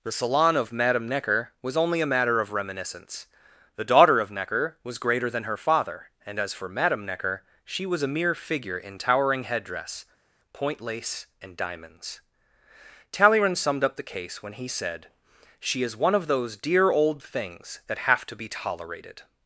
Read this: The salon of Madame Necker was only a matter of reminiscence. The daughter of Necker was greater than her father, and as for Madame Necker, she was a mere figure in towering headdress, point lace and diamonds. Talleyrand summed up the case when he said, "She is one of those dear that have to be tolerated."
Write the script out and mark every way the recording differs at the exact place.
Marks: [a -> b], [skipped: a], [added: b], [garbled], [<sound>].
The salon of Madame Necker was only a matter of reminiscence. The daughter of Necker was greater than her father, and as for Madame Necker, she was a mere figure in towering headdress, point lace and diamonds. Talleyrand summed up the case when he said, "She is one of those dear [added: old things] that have to be tolerated."